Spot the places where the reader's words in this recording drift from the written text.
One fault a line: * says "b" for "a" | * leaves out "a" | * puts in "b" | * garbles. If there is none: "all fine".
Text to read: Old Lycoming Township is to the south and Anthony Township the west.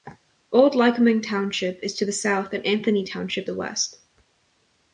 all fine